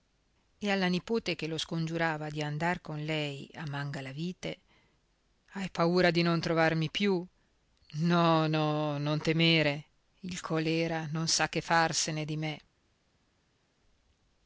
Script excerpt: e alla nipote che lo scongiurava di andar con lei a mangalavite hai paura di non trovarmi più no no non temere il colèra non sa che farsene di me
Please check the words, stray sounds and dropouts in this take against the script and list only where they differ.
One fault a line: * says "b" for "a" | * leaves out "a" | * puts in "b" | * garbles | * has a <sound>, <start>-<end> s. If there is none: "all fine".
all fine